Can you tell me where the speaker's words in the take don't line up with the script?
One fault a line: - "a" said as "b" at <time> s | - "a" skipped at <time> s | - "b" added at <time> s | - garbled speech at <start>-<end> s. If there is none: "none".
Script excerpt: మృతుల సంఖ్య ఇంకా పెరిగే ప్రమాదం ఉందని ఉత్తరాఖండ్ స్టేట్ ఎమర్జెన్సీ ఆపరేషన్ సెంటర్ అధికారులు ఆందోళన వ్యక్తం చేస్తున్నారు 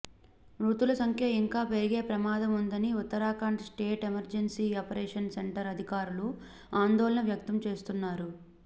none